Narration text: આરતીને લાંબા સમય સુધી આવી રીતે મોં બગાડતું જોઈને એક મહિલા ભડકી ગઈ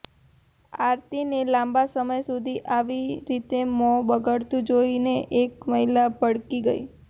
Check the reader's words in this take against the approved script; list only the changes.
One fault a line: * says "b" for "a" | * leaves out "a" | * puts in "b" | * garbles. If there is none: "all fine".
all fine